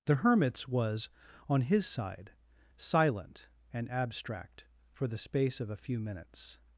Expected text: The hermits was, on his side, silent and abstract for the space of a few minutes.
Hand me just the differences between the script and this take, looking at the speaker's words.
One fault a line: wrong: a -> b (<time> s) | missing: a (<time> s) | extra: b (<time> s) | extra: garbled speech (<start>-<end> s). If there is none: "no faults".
no faults